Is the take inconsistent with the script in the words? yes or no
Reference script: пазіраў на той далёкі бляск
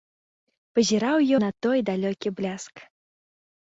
no